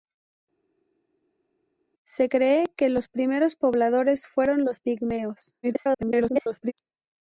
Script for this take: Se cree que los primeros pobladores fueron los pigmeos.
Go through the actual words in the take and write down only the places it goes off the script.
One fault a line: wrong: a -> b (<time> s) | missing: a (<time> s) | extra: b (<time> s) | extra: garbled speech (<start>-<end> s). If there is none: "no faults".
extra: garbled speech (5.6-6.7 s)